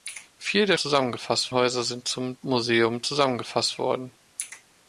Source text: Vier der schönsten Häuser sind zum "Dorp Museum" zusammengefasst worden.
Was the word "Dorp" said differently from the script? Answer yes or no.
yes